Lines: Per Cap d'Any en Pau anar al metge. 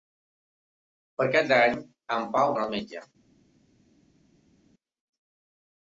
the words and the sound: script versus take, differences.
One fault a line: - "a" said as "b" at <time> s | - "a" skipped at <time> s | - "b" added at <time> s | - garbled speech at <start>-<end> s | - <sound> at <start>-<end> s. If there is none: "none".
none